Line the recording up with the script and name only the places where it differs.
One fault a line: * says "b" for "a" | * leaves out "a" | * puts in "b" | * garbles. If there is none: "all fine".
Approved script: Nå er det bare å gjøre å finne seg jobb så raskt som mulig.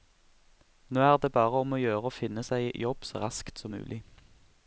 * puts in "om"